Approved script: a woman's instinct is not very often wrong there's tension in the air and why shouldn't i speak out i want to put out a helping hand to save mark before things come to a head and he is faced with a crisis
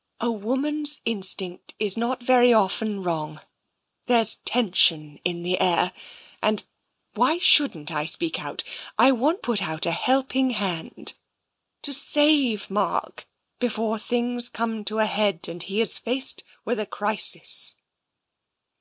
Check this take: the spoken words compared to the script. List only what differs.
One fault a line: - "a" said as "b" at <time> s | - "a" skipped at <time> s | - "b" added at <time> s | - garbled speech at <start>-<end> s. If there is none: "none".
- "to" skipped at 9.4 s